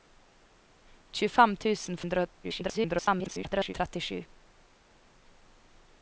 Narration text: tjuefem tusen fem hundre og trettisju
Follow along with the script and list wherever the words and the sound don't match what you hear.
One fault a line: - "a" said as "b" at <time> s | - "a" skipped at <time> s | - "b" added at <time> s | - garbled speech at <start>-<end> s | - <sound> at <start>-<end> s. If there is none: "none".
- "fem" skipped at 2.0 s
- garbled speech at 2.4-3.7 s